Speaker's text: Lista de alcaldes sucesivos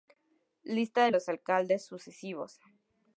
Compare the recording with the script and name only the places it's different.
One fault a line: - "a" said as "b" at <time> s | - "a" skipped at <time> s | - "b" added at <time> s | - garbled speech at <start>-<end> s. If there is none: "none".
- "los" added at 1.1 s